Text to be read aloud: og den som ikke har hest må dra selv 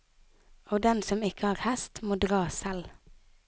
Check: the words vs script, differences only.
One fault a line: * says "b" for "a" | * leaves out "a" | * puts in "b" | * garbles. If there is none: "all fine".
all fine